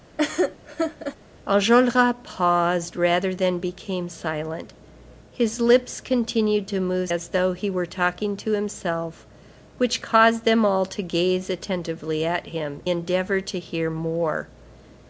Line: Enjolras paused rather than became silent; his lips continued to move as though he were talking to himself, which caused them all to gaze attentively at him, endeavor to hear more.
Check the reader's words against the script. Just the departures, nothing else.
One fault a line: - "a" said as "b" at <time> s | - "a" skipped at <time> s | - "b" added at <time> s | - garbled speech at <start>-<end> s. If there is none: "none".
none